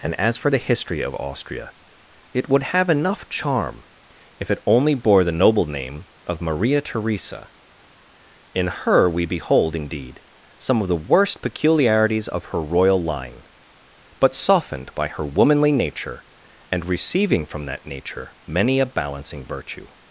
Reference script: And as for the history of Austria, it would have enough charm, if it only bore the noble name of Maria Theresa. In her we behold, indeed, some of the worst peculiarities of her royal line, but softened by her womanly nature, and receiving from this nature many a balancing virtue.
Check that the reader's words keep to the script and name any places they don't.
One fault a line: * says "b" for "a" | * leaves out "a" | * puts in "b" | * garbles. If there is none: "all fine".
* says "that" for "this"